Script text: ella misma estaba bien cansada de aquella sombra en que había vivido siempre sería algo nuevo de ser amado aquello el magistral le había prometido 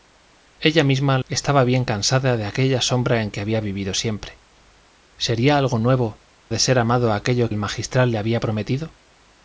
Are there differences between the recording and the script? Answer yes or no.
no